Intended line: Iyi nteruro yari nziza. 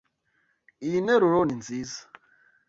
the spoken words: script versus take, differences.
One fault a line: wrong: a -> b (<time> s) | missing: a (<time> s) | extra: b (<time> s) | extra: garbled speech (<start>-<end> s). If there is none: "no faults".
wrong: yari -> ni (1.4 s)